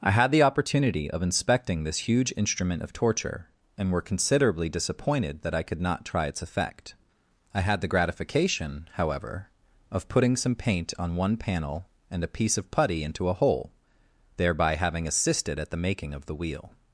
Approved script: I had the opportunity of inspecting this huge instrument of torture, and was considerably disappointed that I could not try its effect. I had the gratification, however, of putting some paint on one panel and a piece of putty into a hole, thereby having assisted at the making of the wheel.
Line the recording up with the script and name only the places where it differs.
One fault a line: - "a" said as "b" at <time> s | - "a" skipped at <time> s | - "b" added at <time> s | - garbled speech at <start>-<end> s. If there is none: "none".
- "was" said as "were" at 3.9 s